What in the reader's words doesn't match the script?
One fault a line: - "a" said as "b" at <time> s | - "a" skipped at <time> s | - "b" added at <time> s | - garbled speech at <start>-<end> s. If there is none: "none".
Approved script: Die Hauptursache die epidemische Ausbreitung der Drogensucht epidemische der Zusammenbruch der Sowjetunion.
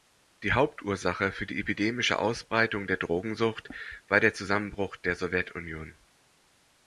- "für" added at 1.3 s
- "epidemische" said as "war" at 4.1 s